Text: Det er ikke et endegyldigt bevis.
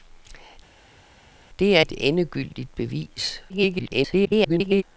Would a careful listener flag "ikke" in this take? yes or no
yes